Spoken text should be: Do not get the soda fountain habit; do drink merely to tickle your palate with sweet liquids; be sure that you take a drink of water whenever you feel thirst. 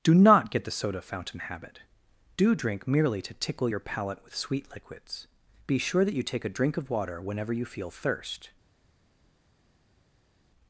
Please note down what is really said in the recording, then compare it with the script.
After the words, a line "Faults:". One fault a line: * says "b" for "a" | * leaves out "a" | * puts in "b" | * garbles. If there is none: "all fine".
Do not get the soda fountain habit; do drink merely to tickle your palate with sweet liquids; be sure that you take a drink of water whenever you feel thirst.
Faults:
all fine